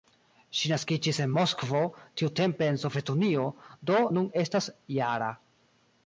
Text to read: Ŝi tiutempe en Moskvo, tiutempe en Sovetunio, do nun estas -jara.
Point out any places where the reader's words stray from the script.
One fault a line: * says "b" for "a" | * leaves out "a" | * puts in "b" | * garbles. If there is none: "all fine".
* says "naskiĝis" for "tiutempe"